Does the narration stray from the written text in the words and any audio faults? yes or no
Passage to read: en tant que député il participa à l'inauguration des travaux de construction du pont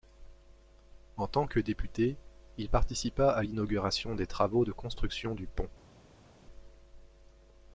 no